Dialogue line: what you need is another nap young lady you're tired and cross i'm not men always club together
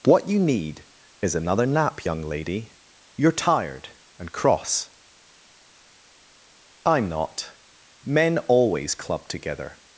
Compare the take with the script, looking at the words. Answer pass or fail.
pass